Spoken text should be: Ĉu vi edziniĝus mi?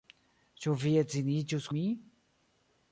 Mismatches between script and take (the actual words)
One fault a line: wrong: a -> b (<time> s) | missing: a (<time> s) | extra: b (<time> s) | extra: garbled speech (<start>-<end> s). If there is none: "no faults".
no faults